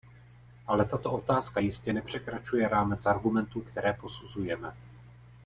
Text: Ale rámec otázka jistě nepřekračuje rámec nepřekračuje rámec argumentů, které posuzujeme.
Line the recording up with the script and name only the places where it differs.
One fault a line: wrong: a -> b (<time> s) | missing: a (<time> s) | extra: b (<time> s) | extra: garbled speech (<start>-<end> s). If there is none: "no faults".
wrong: rámec -> tato (0.8 s)
missing: nepřekračuje rámec (3.1 s)